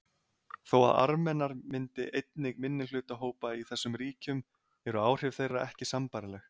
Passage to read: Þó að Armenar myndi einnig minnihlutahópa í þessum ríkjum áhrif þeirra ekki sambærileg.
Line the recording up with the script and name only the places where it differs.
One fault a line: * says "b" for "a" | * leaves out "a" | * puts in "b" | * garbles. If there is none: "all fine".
* puts in "eru"